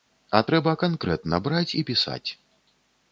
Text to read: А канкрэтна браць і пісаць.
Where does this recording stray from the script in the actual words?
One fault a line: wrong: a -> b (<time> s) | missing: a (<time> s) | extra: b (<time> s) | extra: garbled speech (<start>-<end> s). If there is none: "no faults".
extra: трэба (0.5 s)